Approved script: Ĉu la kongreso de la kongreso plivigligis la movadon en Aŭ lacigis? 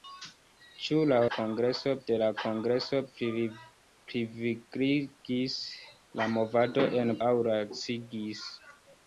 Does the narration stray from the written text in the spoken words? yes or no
no